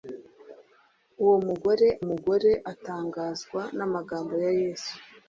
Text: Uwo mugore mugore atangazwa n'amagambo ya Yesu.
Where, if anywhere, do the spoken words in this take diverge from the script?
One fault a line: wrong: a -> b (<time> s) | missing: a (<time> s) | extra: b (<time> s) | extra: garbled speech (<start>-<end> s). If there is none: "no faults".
no faults